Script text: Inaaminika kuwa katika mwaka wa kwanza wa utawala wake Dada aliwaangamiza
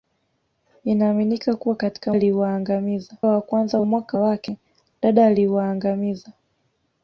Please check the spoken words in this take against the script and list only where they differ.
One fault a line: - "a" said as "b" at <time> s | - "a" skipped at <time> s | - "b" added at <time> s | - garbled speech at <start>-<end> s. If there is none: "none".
- "mwaka" said as "aliwaangamiza" at 2.1 s
- "utawala" said as "mwaka" at 3.8 s